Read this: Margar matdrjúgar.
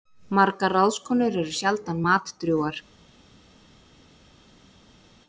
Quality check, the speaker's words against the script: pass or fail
fail